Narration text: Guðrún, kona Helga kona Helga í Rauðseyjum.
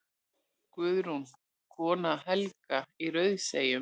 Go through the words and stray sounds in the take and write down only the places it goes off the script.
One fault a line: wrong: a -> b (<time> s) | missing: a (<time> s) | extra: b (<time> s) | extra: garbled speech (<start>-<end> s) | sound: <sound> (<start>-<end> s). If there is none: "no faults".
missing: kona Helga (2.8 s)